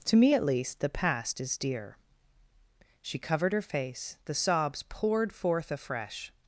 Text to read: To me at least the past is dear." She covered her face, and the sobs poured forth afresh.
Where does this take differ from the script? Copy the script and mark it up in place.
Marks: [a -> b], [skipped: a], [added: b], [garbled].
To me at least the past is dear." She covered her face, [skipped: and] the sobs poured forth afresh.